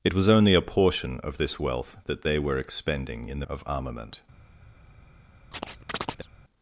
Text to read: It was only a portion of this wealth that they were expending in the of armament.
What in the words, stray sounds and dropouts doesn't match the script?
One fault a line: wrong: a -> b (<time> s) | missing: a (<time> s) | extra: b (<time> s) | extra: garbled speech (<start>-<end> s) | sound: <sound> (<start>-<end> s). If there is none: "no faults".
sound: chirp (5.5-6.3 s)